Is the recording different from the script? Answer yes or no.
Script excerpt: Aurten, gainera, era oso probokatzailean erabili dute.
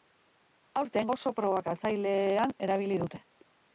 yes